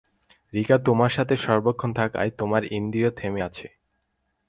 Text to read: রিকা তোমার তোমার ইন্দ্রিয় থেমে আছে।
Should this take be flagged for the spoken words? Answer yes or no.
yes